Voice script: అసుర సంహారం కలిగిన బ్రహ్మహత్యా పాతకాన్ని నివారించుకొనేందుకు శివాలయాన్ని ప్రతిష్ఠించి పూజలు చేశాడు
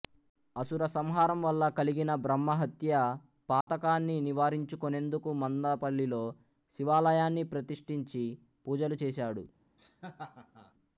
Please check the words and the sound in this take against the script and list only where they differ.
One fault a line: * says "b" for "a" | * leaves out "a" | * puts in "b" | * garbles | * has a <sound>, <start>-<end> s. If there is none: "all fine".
* puts in "వల్ల"
* has a dropout, 3.6-3.7 s
* puts in "మందపల్లిలో"
* has a laugh, 9.8-10.7 s